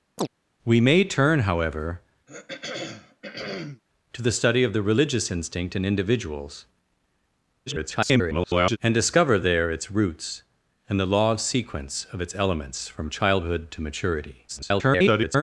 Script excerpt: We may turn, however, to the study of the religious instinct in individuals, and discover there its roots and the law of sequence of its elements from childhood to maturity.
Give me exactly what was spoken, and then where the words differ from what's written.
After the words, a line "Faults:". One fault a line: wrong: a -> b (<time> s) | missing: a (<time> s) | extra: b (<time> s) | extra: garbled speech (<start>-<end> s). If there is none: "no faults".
We may turn, however, to the study of the religious instinct in individuals, [garbled] and discover there its roots and the law of sequence of its elements from childhood to maturity. [garbled]
Faults:
extra: garbled speech (7.7-8.8 s)
extra: garbled speech (14.5-15.4 s)